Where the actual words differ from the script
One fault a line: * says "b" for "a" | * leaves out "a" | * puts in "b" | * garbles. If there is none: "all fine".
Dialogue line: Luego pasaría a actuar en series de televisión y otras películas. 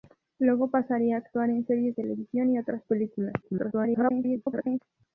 * leaves out "de"
* garbles